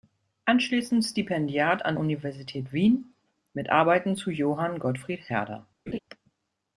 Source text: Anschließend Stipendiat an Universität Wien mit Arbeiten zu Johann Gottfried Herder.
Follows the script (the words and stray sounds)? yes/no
no